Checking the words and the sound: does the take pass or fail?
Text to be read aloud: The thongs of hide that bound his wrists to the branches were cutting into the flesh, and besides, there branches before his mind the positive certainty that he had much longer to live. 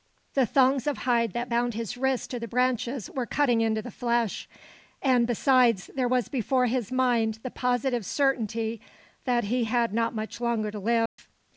fail